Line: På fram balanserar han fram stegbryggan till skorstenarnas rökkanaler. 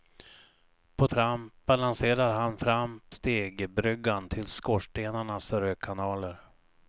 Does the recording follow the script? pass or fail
pass